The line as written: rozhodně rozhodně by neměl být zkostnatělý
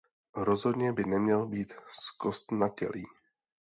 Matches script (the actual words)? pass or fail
fail